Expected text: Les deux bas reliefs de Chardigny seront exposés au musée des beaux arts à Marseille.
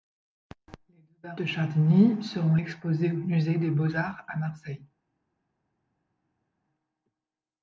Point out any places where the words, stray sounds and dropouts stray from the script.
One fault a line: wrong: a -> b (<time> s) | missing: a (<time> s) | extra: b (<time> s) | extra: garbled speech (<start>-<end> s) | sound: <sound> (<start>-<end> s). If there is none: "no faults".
missing: reliefs (1.4 s)